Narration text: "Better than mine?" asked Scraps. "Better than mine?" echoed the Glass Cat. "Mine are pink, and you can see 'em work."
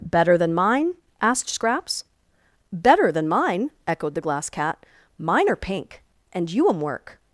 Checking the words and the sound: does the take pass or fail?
fail